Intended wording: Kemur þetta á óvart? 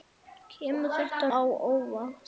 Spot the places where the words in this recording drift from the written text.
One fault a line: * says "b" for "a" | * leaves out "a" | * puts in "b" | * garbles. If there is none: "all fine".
all fine